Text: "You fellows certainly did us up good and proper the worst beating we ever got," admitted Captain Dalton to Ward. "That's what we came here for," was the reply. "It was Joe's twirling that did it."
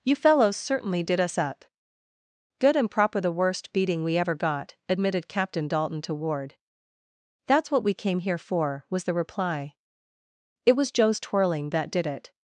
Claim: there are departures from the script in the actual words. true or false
false